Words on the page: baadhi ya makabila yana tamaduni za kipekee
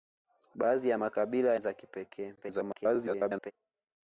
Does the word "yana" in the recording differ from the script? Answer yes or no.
yes